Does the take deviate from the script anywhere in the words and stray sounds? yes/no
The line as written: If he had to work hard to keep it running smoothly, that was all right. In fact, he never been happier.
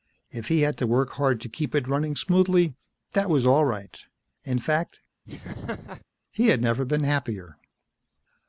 yes